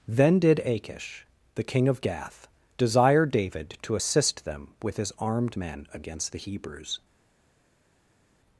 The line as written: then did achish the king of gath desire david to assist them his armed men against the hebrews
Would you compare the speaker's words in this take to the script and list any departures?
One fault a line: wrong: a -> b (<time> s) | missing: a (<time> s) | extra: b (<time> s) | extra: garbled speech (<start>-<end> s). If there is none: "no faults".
extra: with (4.8 s)